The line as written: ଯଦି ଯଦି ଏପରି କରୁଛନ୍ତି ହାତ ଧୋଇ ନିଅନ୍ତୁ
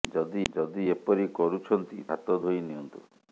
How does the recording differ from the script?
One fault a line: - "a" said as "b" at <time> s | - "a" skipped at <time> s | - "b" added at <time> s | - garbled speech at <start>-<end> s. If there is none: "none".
none